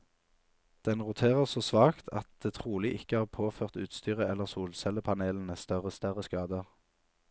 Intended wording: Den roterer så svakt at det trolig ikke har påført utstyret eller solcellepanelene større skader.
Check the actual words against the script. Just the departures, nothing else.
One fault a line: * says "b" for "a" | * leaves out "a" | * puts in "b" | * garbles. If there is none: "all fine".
* puts in "større"